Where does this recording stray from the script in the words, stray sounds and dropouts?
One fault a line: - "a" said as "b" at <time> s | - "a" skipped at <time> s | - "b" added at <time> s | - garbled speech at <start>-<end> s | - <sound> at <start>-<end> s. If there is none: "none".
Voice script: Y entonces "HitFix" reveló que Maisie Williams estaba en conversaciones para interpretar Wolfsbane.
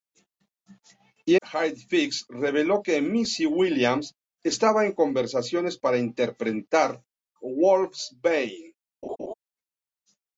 - "entonces" skipped at 1.4 s
- laugh at 9.0-9.3 s